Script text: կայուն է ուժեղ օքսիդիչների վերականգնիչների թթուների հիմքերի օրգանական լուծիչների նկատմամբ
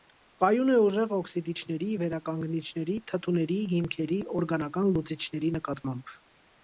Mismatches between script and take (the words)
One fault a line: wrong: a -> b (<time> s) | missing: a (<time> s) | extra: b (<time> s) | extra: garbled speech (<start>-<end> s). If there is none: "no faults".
no faults